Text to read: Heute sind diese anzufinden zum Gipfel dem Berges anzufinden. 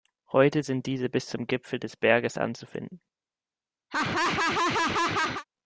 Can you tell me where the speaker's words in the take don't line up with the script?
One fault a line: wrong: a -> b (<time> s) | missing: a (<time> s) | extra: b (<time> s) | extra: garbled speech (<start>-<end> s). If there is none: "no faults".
wrong: anzufinden -> bis (1.1 s)
wrong: dem -> des (1.8 s)